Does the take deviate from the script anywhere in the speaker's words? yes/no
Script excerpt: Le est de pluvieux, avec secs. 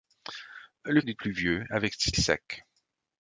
no